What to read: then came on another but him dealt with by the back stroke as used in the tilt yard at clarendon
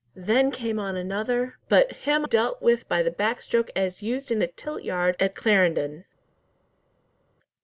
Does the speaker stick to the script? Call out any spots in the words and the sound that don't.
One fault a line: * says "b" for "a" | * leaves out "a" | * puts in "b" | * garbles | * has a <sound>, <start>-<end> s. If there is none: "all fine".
all fine